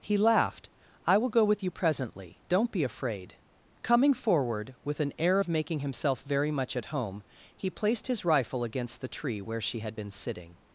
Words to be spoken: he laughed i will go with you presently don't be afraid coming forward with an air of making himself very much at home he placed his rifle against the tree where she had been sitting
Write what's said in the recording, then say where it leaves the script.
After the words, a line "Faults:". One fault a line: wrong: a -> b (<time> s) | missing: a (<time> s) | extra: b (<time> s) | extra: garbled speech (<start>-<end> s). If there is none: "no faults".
he laughed i will go with you presently don't be afraid coming forward with an air of making himself very much at home he placed his rifle against the tree where she had been sitting
Faults:
no faults